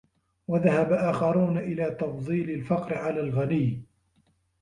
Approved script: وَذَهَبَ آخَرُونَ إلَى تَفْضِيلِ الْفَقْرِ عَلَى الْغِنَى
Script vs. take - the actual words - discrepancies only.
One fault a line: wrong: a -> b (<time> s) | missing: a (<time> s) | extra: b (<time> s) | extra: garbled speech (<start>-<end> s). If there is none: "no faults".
no faults